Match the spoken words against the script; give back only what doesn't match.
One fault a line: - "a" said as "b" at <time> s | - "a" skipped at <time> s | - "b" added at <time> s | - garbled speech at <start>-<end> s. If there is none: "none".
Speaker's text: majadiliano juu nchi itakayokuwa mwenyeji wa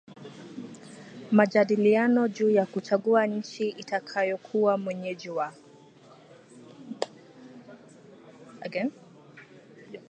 - "ya kuchagua" added at 2.5 s